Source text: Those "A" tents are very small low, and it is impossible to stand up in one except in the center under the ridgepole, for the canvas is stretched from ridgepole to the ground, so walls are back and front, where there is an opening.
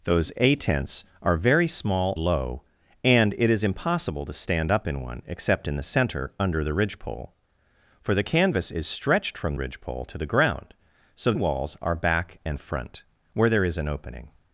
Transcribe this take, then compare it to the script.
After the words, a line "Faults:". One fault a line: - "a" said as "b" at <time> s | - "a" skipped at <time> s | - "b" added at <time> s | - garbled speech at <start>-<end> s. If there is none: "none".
Those "A" tents are very small low, and it is impossible to stand up in one except in the center under the ridgepole, for the canvas is stretched from ridgepole to the ground, so walls are back and front, where there is an opening.
Faults:
none